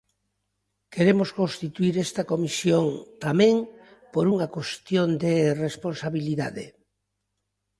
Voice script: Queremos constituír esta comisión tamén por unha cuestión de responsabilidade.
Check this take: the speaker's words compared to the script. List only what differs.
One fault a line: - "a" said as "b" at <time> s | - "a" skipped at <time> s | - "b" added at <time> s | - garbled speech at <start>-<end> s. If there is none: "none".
none